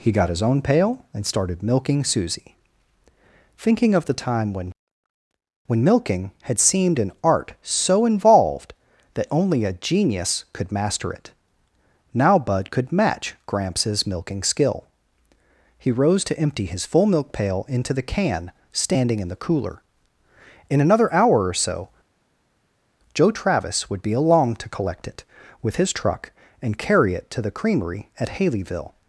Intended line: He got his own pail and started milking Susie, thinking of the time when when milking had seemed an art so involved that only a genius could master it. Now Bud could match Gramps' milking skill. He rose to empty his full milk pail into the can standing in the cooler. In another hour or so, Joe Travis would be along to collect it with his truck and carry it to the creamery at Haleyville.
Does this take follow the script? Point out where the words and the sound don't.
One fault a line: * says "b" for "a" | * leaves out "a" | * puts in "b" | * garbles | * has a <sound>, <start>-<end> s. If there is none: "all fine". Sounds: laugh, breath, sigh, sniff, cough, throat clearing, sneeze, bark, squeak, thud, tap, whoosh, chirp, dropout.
all fine